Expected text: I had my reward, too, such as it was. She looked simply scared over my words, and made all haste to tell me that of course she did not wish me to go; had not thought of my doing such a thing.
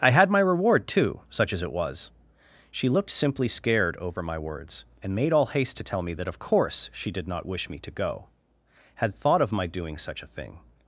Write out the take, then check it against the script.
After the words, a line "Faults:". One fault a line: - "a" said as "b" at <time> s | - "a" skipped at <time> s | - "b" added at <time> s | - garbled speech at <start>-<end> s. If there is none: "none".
I had my reward, too, such as it was. She looked simply scared over my words, and made all haste to tell me that of course she did not wish me to go; had thought of my doing such a thing.
Faults:
- "not" skipped at 9.1 s